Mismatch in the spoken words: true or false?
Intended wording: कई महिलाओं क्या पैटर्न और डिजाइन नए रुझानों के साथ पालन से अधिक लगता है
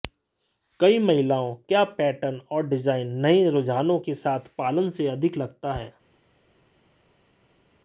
false